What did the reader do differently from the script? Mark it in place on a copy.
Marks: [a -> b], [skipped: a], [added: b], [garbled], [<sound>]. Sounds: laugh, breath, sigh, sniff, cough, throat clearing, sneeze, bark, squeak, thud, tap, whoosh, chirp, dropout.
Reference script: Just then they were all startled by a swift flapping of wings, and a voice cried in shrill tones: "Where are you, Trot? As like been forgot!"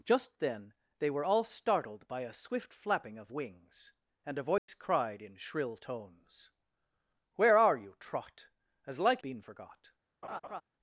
Just then they were all startled by a swift flapping of wings, and a voice [dropout] cried in shrill tones: "Where are you, Trot? As like been forgot!" [laugh]